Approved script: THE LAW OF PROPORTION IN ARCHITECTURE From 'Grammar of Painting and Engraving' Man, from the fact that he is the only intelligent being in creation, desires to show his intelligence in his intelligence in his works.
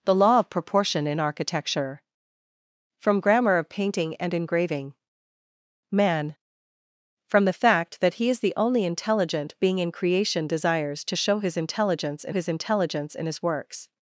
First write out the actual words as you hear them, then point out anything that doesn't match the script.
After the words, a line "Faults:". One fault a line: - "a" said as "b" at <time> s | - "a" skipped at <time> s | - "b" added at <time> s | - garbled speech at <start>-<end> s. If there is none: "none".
THE LAW OF PROPORTION IN ARCHITECTURE From 'Grammar of Painting and Engraving' Man, from the fact that he is the only intelligent being in creation, desires to show his intelligence in his intelligence in his works.
Faults:
none